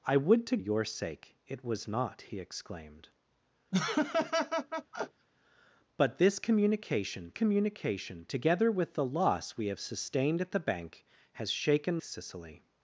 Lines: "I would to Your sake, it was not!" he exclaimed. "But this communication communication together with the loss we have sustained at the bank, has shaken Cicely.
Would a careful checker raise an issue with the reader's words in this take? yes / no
no